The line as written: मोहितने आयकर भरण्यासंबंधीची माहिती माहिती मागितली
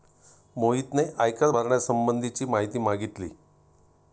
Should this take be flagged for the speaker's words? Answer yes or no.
yes